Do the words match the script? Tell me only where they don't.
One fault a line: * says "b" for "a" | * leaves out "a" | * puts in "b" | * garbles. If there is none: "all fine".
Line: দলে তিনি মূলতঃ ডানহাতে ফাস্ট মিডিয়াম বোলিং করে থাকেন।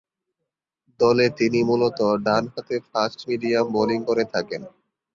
all fine